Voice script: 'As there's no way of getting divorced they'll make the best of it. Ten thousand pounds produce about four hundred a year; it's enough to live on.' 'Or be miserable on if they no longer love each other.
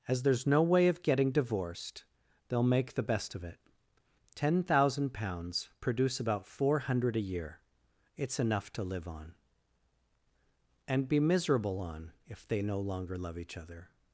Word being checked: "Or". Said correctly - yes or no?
no